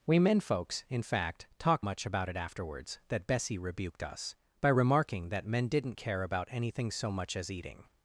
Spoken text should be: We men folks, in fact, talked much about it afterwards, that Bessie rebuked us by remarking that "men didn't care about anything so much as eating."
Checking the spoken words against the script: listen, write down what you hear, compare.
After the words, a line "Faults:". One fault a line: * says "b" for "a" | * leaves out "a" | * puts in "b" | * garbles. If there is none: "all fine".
We men folks, in fact, talked much about it afterwards, that Bessie rebuked us by remarking that "men didn't care about anything so much as eating."
Faults:
all fine